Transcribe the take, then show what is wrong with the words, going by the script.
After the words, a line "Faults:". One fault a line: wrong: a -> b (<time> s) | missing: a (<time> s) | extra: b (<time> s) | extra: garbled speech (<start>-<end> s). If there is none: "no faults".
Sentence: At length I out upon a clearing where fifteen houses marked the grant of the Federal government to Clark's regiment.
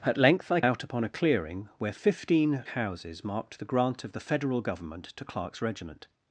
At length I out upon a clearing where fifteen houses marked the grant of the Federal government to Clark's regiment.
Faults:
no faults